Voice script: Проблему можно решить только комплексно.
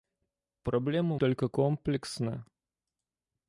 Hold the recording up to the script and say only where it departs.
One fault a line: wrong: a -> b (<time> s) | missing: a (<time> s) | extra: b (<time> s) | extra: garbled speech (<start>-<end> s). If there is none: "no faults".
missing: можно решить (1.2 s)